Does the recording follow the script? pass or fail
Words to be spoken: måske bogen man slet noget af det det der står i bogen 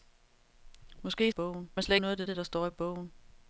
pass